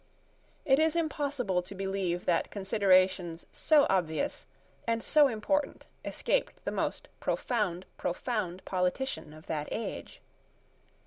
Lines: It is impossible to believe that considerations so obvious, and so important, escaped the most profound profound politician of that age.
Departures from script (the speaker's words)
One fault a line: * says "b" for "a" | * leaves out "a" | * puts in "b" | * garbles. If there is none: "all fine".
all fine